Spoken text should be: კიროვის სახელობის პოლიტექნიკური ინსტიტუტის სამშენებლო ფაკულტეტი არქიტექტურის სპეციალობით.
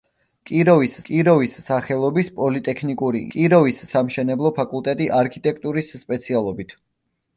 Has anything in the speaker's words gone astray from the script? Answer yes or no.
yes